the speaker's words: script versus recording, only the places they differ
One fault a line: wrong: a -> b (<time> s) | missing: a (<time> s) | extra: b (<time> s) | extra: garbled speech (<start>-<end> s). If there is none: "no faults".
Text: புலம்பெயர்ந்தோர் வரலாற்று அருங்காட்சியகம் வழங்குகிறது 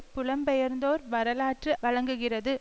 missing: அருங்காட்சியகம் (1.7 s)